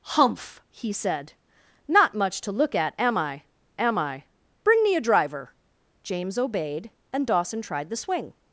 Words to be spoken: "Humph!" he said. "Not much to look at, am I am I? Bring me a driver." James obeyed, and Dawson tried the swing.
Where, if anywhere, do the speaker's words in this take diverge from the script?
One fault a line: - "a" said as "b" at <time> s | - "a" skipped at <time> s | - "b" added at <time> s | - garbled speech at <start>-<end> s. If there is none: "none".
none